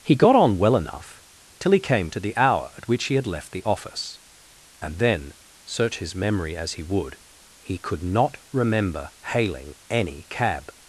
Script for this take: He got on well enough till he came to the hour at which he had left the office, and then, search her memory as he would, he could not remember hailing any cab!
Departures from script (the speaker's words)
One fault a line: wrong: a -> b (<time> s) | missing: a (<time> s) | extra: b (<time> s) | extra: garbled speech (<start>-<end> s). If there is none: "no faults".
wrong: her -> his (6.0 s)